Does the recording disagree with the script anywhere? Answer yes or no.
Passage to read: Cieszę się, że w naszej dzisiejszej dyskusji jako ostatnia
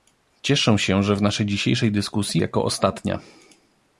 no